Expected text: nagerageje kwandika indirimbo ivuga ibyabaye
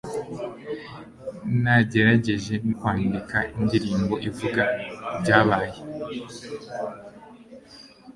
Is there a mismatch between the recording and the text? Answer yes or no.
no